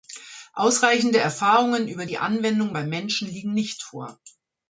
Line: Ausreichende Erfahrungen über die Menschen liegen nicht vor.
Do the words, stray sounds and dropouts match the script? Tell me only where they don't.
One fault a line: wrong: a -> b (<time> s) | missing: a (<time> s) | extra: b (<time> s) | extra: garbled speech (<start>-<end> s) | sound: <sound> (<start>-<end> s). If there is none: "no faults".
extra: Anwendung beim (2.2 s)